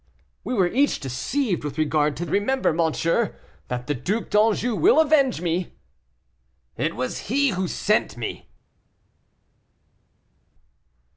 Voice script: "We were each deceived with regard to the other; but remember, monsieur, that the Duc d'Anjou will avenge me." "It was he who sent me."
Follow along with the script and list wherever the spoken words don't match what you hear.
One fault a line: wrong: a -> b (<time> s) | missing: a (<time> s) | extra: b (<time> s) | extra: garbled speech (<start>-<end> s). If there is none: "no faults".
missing: the other but (2.2 s)